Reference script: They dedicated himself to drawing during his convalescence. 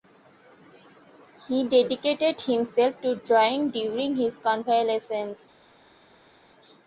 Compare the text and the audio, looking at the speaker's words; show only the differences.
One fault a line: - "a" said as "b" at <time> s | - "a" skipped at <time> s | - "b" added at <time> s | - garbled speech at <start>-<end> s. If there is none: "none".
- "They" said as "He" at 1.5 s